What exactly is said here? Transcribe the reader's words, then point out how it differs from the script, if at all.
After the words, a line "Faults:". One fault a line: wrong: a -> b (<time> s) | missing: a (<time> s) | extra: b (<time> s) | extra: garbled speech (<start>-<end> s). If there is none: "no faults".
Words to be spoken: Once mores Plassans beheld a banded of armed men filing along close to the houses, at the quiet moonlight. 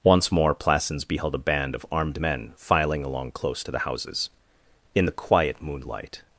Once more Plassans beheld a band of armed men filing along close to the houses, in the quiet moonlight.
Faults:
wrong: mores -> more (0.3 s)
wrong: banded -> band (1.4 s)
wrong: at -> in (4.9 s)